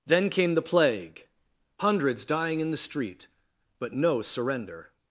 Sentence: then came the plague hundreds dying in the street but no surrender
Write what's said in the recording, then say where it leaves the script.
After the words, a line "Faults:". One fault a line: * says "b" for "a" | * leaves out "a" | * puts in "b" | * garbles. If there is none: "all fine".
then came the plague hundreds dying in the street but no surrender
Faults:
all fine